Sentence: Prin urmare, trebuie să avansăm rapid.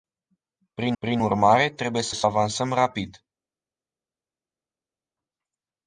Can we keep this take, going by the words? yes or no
no